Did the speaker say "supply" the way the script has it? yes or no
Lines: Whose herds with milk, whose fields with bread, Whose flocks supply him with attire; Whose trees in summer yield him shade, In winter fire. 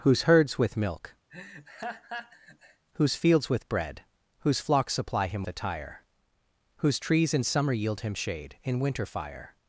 yes